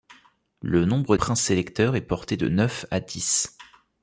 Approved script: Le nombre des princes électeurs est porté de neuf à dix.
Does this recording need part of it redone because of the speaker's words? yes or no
yes